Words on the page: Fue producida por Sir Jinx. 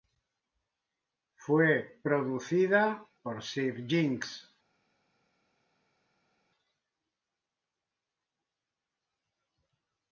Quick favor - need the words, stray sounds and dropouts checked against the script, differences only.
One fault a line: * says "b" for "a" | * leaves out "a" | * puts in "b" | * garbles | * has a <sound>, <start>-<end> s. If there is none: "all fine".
all fine